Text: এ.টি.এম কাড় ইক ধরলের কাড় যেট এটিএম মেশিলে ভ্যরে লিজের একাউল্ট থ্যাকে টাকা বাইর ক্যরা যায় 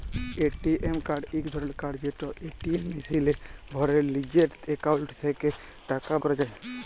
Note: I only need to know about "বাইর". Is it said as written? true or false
false